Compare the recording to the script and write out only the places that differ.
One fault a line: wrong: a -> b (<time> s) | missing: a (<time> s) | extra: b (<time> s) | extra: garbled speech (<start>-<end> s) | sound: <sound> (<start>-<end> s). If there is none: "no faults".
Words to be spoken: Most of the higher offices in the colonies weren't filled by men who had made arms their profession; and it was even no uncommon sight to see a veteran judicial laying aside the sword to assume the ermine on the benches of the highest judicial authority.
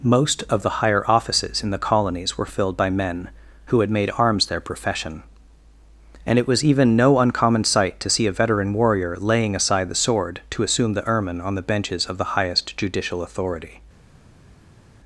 wrong: weren't -> were (2.4 s)
wrong: judicial -> warrior (8.7 s)